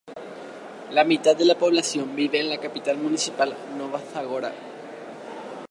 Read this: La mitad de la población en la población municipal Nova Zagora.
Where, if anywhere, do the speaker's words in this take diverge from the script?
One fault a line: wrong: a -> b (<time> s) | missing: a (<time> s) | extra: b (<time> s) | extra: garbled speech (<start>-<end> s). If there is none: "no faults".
extra: vive (2.2 s)
wrong: población -> capital (2.6 s)